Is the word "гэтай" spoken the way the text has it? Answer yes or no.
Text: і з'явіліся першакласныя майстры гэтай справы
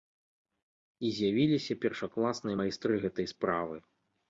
yes